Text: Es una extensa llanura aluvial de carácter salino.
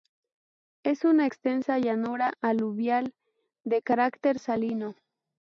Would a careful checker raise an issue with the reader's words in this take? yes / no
no